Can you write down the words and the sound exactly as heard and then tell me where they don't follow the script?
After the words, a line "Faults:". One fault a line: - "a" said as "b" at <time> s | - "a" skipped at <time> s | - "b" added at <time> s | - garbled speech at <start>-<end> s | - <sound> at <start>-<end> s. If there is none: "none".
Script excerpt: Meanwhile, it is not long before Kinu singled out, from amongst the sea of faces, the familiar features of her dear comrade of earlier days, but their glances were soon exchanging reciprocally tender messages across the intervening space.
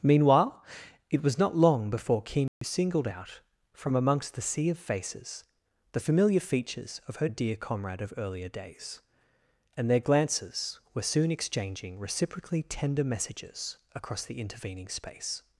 Meanwhile, it was not long before Kinu singled out, from amongst the sea of faces, the familiar features of her dear comrade of earlier days, and their glances were soon exchanging reciprocally tender messages across the intervening space.
Faults:
- "is" said as "was" at 1.2 s
- dropout at 2.5-2.6 s
- "but" said as "and" at 9.8 s